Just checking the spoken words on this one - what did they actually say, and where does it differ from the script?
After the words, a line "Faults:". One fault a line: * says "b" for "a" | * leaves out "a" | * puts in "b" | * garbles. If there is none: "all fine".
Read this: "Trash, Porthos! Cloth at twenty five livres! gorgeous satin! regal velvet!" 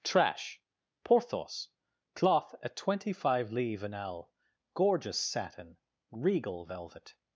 "Trash, Porthos! Cloth at twenty five livres an ell! gorgeous satin! regal velvet!"
Faults:
* puts in "an ell"